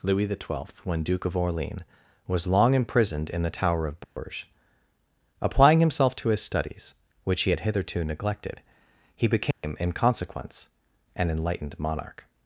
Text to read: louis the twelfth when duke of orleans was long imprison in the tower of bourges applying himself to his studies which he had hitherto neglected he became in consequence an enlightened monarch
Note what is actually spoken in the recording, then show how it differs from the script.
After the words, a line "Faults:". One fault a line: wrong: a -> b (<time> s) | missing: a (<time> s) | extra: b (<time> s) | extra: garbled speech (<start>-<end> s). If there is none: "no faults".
louis the twelfth when duke of orleans was long imprisoned in the tower of bourges applying himself to his studies which he had hitherto neglected he became in consequence an enlightened monarch
Faults:
wrong: imprison -> imprisoned (2.7 s)